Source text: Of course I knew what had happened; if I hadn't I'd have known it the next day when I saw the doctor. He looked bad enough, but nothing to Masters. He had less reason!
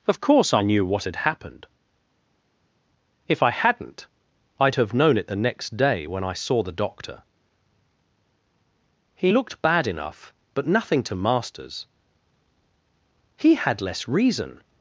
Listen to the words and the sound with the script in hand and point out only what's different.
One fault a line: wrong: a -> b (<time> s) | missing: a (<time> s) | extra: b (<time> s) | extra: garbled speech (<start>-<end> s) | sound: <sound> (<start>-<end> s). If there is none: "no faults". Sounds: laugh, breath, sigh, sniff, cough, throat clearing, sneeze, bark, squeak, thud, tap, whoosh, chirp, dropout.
no faults